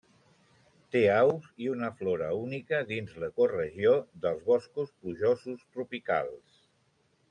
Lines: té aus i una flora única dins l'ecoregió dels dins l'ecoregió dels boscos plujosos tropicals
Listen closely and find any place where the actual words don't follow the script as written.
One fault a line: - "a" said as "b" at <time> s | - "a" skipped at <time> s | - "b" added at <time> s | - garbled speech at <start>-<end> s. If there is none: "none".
- "dins l'ecoregió dels" skipped at 4.5 s